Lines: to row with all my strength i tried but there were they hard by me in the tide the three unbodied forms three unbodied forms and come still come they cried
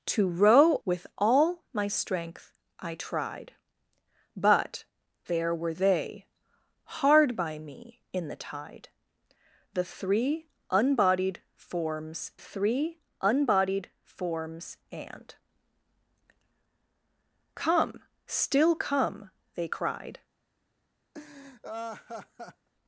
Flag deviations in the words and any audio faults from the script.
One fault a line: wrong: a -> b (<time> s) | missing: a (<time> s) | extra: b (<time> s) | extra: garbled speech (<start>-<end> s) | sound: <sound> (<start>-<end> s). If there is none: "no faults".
sound: laugh (21.1-22.7 s)